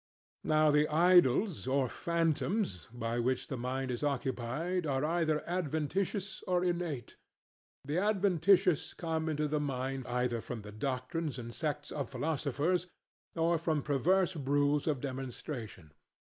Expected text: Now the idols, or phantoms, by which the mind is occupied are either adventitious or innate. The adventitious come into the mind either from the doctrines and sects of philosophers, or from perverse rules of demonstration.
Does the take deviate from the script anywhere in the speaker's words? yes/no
no